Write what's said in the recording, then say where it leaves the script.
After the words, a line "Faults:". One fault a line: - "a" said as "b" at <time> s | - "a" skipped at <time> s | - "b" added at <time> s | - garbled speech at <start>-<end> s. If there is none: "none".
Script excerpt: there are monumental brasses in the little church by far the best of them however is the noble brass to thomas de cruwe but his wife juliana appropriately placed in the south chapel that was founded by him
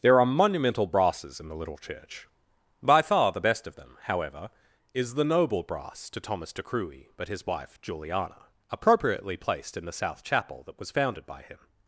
there are monumental brasses in the little church by far the best of them however is the noble brass to thomas de cruwe but his wife juliana appropriately placed in the south chapel that was founded by him
Faults:
none